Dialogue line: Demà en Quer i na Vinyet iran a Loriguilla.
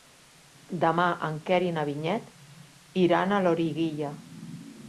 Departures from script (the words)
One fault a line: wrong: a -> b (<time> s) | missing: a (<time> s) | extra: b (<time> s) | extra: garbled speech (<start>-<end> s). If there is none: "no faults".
no faults